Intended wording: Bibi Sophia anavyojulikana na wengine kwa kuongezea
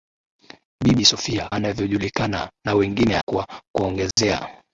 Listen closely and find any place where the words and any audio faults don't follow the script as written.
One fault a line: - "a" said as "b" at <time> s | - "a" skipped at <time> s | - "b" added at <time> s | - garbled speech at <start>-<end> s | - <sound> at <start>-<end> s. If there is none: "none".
- dropout at 4.1-4.2 s